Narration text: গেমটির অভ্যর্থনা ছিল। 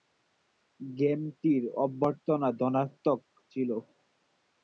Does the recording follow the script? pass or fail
fail